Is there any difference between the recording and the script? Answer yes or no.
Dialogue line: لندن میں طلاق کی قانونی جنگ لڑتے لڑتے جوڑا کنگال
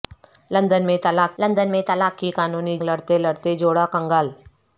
yes